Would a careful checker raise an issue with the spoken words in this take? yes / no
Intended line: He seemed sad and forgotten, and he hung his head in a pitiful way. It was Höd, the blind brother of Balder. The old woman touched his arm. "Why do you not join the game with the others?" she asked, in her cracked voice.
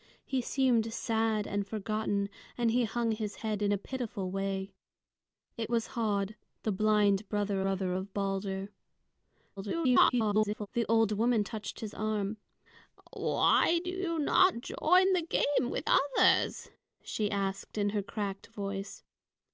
yes